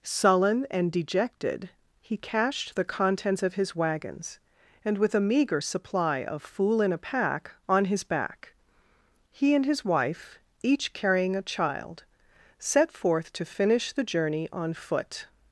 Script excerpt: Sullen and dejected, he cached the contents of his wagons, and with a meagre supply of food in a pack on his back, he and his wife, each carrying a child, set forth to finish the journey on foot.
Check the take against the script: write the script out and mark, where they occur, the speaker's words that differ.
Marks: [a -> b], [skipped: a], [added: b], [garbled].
Sullen and dejected, he cached the contents of his wagons, and with a meagre supply of [food -> fool] in a pack on his back, he and his wife, each carrying a child, set forth to finish the journey on foot.